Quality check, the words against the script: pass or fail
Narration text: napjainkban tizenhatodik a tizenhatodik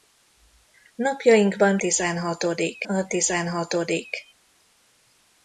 pass